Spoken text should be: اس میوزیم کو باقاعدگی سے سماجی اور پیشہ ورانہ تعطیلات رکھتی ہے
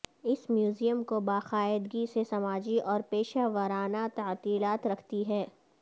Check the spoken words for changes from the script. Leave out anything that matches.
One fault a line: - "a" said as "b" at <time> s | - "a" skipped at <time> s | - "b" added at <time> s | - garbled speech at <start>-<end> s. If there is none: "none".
none